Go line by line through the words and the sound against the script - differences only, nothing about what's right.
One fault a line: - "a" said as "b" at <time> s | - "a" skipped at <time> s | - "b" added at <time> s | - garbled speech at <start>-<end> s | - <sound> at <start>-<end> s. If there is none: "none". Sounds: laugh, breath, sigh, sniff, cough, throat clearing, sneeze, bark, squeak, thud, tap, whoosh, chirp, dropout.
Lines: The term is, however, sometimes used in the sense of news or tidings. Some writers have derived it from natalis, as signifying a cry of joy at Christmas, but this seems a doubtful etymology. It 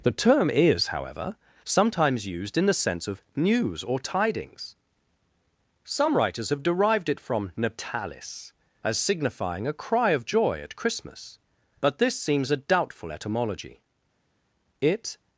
none